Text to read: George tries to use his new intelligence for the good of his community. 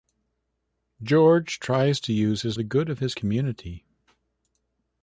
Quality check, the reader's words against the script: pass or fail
fail